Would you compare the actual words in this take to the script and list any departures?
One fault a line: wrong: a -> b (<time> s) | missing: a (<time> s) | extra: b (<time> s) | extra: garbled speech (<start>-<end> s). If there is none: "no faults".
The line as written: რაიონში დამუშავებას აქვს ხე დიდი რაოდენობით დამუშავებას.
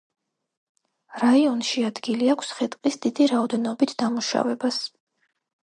wrong: დამუშავებას -> ადგილი (1.9 s)
extra: ტყის (2.8 s)